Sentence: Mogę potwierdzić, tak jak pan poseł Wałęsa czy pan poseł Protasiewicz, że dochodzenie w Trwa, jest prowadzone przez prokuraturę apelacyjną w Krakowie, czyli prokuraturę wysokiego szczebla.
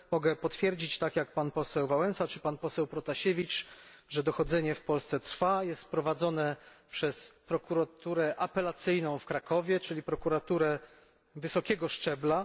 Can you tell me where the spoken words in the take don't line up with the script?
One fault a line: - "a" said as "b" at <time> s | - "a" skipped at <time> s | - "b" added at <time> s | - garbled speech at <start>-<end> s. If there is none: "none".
- "Polsce" added at 4.8 s